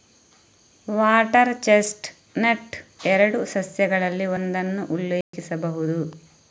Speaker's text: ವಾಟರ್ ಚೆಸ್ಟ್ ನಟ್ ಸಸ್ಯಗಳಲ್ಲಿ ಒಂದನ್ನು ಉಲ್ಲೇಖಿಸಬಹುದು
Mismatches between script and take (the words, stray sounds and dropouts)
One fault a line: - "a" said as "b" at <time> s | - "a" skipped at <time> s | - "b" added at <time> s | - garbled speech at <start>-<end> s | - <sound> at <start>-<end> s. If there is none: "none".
- "ಎರಡು" added at 3.1 s
- dropout at 5.2-5.3 s